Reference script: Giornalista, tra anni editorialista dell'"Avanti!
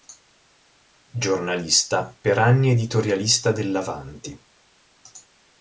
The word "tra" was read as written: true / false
false